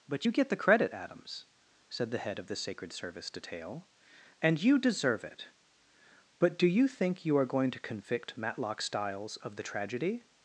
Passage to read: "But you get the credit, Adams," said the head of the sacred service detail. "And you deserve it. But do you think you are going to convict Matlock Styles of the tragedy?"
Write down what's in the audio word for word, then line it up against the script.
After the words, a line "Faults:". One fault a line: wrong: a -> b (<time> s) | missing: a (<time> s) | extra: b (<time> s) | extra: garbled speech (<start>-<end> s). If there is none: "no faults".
"But you get the credit, Adams," said the head of the sacred service detail. "And you deserve it. But do you think you are going to convict Matlock Styles of the tragedy?"
Faults:
no faults